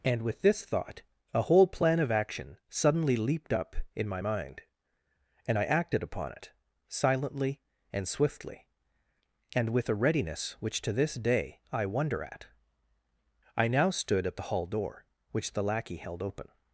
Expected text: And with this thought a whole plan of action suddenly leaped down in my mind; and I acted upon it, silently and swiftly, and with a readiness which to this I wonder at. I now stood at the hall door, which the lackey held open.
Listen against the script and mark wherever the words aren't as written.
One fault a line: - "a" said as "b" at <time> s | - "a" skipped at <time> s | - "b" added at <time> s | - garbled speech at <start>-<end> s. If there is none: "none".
- "down" said as "up" at 3.5 s
- "day" added at 11.1 s